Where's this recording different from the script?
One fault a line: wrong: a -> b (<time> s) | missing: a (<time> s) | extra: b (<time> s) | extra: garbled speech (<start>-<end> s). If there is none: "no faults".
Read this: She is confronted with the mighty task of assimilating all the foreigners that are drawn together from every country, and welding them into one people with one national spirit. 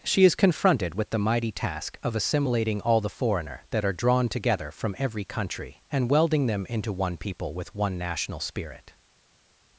wrong: foreigners -> foreigner (3.1 s)